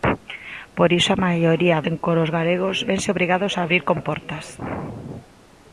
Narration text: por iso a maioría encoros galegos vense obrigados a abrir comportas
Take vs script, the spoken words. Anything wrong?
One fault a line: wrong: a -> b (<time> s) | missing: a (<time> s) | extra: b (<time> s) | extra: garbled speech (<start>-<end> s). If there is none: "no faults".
no faults